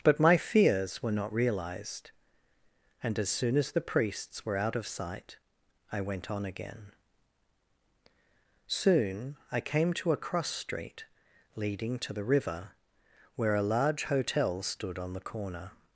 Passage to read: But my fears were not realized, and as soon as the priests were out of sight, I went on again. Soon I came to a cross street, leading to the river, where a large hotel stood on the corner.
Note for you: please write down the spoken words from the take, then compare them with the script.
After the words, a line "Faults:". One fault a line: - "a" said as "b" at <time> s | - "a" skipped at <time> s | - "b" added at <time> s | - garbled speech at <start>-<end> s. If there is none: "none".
But my fears were not realized, and as soon as the priests were out of sight, I went on again. Soon I came to a cross street, leading to the river, where a large hotel stood on the corner.
Faults:
none